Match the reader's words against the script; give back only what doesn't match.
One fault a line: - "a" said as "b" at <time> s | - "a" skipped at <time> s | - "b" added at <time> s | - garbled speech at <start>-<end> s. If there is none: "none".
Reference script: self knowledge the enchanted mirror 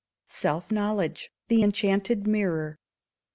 none